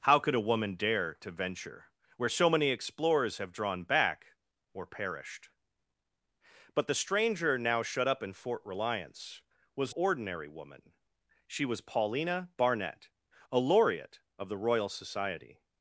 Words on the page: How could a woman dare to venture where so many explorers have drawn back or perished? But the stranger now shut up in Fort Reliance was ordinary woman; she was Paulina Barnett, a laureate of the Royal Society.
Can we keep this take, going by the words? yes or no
yes